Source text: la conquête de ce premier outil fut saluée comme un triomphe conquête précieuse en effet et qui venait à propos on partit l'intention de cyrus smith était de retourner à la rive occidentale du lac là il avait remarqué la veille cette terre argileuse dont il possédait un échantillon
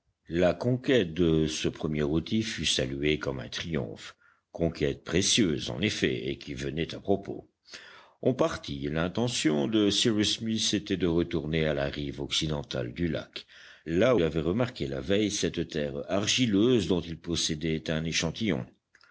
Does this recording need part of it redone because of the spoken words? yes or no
no